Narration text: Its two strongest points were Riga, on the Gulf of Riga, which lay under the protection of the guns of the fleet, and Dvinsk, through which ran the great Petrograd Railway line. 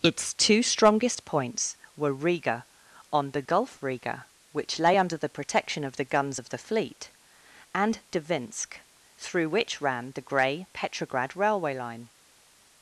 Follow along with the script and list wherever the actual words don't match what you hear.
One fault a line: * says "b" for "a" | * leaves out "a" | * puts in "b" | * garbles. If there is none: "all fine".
* leaves out "of"
* says "grey" for "great"